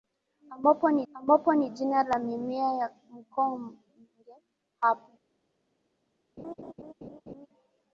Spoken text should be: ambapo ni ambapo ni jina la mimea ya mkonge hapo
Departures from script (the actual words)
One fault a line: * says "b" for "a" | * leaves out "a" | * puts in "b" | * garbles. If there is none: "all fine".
all fine